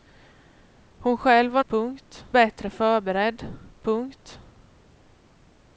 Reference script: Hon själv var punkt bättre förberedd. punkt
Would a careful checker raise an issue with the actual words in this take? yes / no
no